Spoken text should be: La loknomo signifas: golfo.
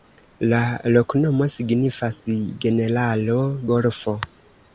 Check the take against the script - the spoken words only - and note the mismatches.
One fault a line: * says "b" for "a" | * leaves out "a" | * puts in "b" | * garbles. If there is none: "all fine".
* puts in "generalo"